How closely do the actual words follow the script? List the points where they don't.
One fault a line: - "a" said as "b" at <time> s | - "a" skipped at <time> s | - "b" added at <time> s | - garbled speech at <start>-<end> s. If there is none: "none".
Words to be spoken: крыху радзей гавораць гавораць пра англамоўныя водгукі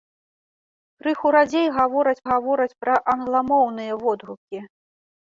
none